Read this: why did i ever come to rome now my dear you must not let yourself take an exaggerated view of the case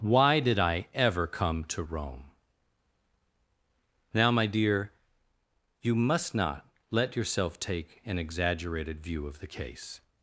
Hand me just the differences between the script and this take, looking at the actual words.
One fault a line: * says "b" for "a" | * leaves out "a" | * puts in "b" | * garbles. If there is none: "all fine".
all fine